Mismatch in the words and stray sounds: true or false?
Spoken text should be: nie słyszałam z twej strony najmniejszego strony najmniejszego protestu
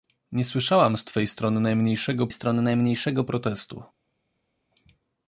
false